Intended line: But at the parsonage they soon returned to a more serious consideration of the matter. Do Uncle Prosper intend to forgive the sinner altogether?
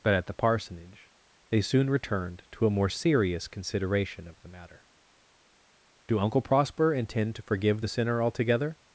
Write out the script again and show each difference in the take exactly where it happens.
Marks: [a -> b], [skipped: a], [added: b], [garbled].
But at the parsonage they soon returned to a more serious consideration of the matter. Do Uncle Prosper intend to forgive the sinner altogether?